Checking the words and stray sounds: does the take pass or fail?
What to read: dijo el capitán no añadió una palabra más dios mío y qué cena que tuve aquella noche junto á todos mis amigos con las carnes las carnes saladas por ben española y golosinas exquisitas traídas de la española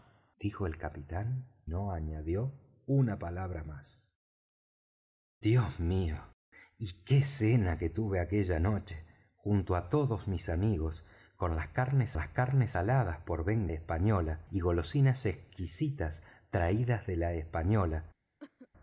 fail